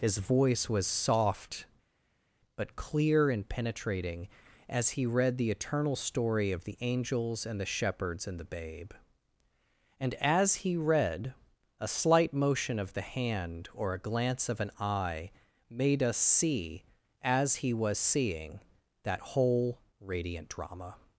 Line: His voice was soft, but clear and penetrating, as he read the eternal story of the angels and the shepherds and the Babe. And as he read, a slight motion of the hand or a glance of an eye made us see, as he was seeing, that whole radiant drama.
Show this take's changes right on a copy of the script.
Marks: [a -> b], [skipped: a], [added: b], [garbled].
His voice was soft, but clear and penetrating, as he read the eternal story of the angels and the shepherds and the Babe. And as he read, a slight motion of the hand or a glance of an eye made us see, as he was seeing, that whole radiant drama.